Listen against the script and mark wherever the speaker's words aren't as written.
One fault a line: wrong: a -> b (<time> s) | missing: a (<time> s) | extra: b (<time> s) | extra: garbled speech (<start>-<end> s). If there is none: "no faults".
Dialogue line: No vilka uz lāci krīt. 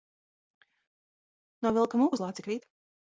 extra: mūk (2.0 s)